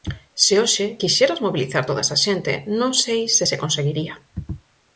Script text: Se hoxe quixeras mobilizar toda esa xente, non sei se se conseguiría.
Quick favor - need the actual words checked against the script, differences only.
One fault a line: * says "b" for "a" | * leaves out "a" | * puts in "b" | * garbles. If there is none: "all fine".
all fine